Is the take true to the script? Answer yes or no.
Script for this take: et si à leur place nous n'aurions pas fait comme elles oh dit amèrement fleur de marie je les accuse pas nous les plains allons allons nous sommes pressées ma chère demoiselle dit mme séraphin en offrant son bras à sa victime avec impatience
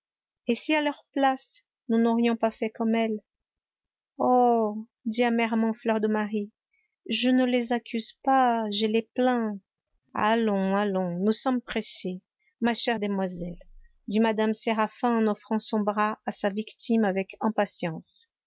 no